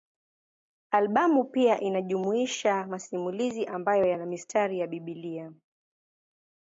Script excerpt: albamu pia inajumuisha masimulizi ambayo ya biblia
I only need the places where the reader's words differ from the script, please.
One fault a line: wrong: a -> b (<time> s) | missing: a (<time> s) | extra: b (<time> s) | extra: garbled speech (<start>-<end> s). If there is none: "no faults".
extra: yana mistari (4.0 s)